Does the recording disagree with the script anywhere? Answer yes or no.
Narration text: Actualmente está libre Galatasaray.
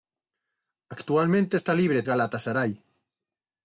no